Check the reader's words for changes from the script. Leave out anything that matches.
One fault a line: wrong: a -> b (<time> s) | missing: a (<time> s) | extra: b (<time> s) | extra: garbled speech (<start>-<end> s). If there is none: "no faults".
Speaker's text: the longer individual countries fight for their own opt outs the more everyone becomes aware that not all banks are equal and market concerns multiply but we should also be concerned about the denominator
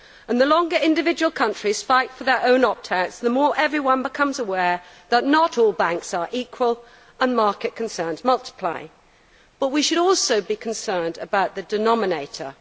no faults